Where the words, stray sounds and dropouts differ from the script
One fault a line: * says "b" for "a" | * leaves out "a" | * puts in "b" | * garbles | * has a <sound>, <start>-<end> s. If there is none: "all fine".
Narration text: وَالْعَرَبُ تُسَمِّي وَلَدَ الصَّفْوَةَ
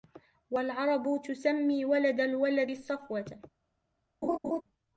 * puts in "الْوَلَدِ"
* has a laugh, 4.2-4.6 s